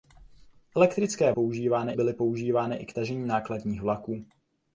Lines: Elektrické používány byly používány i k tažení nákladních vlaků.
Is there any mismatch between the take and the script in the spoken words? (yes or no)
no